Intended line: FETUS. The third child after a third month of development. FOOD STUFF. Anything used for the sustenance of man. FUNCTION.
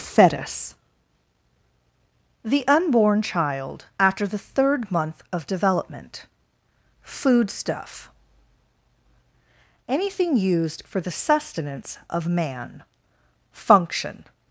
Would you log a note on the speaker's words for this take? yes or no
yes